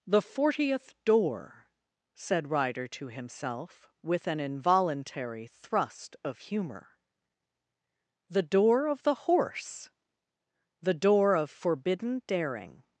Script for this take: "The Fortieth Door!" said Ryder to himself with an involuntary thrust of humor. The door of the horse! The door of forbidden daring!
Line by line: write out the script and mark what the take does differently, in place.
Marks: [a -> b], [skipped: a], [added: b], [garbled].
"The Fortieth Door!" said Ryder to himself with an involuntary thrust of humor. The door of the horse! The door of forbidden daring!